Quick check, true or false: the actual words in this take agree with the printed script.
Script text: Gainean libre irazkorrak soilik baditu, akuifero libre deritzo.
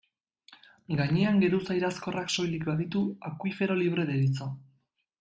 false